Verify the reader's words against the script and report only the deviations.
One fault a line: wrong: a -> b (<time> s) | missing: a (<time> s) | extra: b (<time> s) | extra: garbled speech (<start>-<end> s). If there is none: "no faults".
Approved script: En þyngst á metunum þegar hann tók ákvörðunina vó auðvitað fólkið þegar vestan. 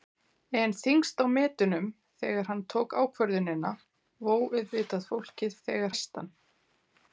no faults